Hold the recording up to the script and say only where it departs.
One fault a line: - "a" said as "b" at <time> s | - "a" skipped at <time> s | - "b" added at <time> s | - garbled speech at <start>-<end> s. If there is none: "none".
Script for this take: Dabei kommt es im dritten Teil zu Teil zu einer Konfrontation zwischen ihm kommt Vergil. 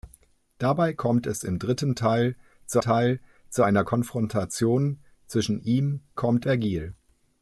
none